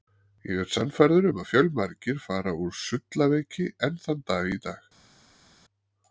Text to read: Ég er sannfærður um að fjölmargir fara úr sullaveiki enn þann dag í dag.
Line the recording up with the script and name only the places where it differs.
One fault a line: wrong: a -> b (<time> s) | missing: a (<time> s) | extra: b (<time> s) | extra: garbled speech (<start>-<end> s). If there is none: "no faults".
no faults